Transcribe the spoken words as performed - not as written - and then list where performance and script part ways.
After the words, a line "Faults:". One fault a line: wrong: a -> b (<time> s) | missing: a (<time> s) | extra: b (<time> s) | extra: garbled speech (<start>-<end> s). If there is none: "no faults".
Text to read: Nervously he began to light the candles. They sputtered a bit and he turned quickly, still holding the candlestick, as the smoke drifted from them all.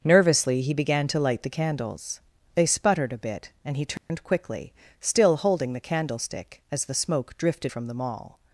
Nervously he began to light the candles. They sputtered a bit and he turned quickly, still holding the candlestick, as the smoke drifted from them all.
Faults:
no faults